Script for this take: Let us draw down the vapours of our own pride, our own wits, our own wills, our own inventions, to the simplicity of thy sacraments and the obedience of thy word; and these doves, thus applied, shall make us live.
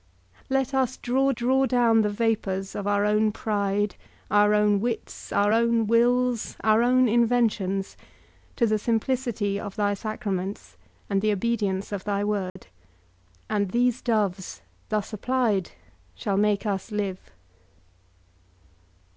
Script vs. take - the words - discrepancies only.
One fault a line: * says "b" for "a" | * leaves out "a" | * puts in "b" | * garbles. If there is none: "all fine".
* puts in "draw"